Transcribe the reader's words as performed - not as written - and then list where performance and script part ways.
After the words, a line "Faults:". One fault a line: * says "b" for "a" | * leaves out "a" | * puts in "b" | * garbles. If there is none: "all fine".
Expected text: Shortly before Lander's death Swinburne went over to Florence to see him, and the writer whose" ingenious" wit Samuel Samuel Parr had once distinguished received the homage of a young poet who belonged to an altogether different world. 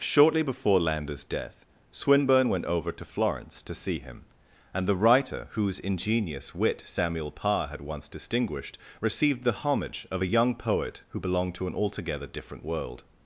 Shortly before Lander's death Swinburne went over to Florence to see him, and the writer whose" ingenious" wit Samuel Parr had once distinguished received the homage of a young poet who belonged to an altogether different world.
Faults:
* leaves out "Samuel"